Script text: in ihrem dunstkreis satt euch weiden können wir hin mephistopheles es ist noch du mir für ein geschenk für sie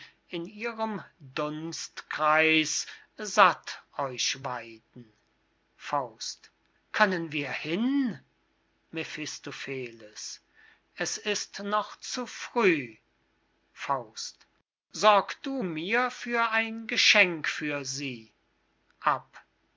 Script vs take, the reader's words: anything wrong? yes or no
yes